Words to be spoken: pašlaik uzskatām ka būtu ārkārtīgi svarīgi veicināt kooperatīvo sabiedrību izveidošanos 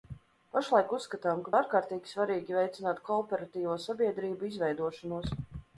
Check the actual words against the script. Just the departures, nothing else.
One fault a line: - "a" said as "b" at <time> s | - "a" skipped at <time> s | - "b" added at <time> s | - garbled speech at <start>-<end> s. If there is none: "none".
- "būtu" skipped at 1.5 s